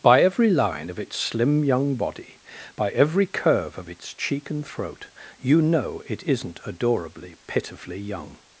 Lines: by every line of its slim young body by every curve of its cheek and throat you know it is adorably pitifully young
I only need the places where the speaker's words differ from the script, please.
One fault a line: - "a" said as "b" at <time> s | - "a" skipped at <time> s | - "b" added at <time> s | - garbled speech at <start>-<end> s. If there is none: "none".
- "is" said as "isn't" at 6.2 s